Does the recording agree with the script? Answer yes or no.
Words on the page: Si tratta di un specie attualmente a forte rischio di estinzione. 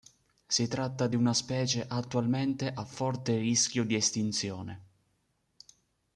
no